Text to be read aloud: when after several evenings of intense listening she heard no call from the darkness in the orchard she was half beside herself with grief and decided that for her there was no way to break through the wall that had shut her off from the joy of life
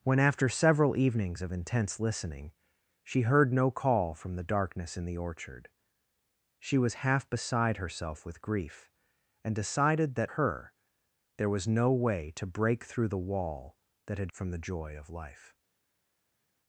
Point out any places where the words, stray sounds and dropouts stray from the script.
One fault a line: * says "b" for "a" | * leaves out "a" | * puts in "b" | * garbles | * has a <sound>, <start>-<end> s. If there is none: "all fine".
* leaves out "for"
* leaves out "shut her off"